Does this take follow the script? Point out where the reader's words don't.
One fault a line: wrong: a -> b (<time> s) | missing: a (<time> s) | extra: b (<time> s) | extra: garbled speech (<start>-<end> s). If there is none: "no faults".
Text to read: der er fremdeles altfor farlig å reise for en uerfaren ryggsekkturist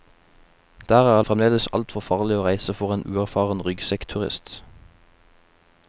no faults